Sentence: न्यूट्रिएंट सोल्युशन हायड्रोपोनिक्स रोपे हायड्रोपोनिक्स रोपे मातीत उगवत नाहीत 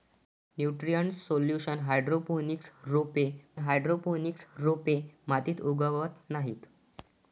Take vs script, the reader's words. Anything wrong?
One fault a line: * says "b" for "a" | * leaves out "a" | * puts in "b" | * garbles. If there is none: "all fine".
all fine